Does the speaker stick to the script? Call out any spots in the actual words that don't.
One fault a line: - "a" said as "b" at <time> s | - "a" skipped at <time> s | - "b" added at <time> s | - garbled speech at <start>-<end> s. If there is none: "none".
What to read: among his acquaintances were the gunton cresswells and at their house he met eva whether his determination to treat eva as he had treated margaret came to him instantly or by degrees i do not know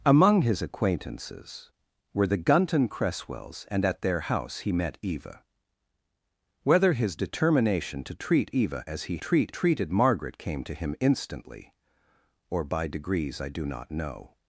- "had" said as "treat" at 9.2 s